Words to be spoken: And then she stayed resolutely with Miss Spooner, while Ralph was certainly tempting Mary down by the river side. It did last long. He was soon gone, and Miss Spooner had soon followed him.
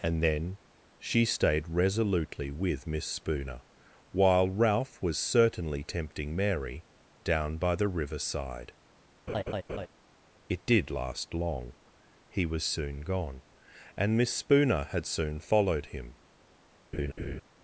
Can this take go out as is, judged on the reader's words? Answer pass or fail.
pass